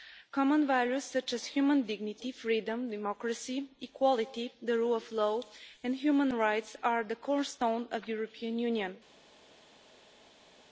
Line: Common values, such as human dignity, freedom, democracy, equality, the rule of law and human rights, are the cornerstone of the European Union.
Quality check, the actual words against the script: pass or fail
pass